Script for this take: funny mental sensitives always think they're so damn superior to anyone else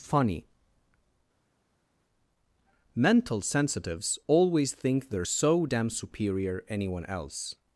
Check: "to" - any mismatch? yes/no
yes